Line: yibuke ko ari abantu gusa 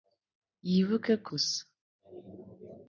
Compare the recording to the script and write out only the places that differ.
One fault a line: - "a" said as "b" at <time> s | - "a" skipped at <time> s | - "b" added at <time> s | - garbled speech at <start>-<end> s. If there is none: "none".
- "ari abantu" skipped at 1.3 s